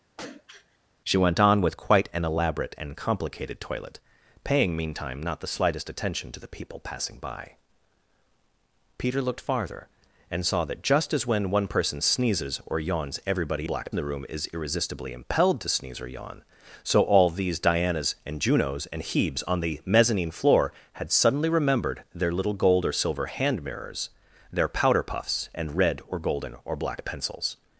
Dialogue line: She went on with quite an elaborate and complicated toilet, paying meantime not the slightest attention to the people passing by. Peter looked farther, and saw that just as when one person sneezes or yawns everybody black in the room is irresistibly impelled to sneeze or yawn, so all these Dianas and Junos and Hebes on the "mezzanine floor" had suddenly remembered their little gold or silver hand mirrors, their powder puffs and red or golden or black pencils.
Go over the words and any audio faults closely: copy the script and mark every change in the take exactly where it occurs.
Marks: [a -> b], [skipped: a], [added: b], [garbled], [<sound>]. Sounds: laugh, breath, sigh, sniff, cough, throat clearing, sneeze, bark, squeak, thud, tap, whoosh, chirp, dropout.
[throat clearing] She went on with quite an elaborate and complicated toilet, paying meantime not the slightest attention to the people passing by. Peter looked farther, and saw that just as when one person sneezes or yawns everybody black in the room is irresistibly impelled to sneeze or yawn, so all these Dianas and Junos and Hebes on the "mezzanine floor" had suddenly remembered their little gold or silver hand mirrors, their powder puffs and red or golden or black pencils.